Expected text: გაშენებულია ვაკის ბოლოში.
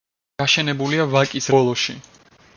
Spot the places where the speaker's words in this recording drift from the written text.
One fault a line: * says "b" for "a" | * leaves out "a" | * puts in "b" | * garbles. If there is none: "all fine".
all fine